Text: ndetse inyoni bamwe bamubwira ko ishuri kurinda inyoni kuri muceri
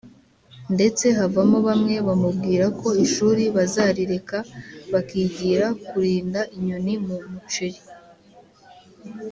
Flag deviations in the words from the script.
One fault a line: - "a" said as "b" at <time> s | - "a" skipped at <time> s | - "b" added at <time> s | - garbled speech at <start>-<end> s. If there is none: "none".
- "inyoni" said as "havamo" at 1.2 s
- "bazarireka bakigira" added at 3.5 s
- "kuri" said as "mu" at 7.0 s